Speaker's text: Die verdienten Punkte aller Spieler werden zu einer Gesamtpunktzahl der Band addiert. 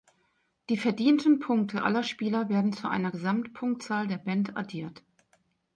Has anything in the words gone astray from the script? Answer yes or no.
no